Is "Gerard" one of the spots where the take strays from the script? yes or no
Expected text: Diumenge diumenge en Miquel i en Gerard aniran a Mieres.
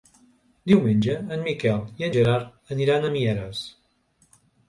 no